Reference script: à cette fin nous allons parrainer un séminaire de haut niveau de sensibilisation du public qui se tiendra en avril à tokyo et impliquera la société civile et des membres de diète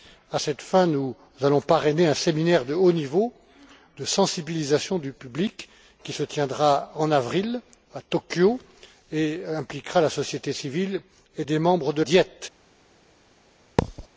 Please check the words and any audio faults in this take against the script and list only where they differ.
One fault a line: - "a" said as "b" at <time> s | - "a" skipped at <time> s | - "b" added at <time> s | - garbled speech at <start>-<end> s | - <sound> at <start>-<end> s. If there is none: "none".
- thud at 13.8-14.1 s